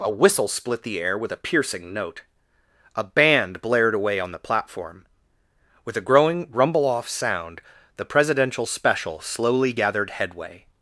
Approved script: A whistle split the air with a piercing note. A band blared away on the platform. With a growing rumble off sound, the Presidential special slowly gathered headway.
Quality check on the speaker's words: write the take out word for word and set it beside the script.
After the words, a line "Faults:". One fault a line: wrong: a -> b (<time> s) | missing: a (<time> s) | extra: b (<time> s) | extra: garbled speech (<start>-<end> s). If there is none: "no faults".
A whistle split the air with a piercing note. A band blared away on the platform. With a growing rumble off sound, the Presidential special slowly gathered headway.
Faults:
no faults